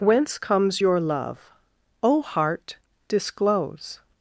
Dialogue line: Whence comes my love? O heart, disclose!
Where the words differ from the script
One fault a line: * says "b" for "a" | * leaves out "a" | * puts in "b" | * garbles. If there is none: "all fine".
* says "your" for "my"